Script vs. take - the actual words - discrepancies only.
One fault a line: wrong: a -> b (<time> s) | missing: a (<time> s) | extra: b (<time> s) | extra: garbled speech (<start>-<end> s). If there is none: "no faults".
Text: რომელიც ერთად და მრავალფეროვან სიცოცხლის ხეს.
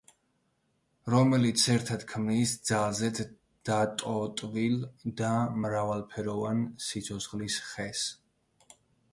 extra: ქმნის ძალზედ დატოტვილ (2.1 s)